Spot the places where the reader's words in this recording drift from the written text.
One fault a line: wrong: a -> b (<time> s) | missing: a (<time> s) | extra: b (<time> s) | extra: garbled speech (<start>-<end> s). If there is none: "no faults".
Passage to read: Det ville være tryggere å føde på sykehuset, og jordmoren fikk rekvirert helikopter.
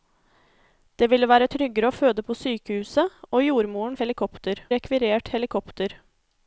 wrong: fikk -> helikopter (4.0 s)